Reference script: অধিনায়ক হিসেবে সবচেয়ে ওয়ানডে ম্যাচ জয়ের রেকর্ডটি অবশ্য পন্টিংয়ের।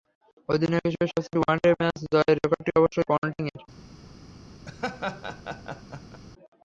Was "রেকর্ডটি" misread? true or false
false